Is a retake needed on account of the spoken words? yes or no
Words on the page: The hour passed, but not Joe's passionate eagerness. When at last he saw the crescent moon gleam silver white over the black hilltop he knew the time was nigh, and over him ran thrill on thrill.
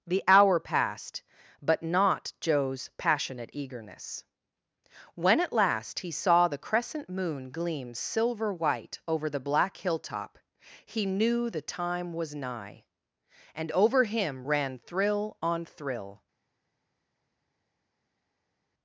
no